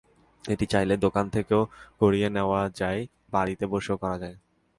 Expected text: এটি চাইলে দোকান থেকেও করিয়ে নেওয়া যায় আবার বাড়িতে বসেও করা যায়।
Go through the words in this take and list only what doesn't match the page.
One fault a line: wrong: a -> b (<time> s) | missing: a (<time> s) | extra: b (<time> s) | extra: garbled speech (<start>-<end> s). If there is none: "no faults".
missing: আবার (3.0 s)